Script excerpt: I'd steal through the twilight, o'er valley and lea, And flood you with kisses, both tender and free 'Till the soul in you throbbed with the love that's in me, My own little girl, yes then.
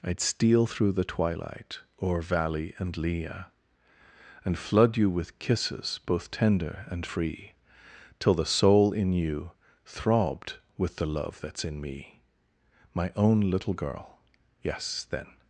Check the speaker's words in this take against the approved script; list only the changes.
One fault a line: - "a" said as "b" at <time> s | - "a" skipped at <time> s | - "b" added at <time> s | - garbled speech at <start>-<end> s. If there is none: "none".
none